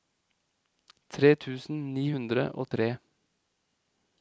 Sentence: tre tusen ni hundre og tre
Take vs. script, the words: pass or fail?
pass